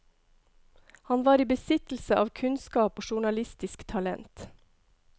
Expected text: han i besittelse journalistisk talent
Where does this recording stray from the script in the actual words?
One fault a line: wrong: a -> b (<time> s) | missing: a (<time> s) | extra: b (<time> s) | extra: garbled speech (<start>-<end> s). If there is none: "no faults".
extra: var (1.2 s)
extra: av kunnskap og (2.2 s)